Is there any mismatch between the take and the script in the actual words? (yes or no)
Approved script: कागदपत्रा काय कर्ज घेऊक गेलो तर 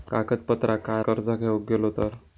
no